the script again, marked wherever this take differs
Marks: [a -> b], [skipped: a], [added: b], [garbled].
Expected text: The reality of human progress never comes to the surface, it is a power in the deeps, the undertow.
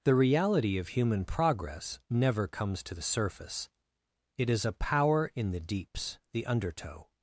The reality of human progress never comes to the surface, it is a power in the deeps, the undertow.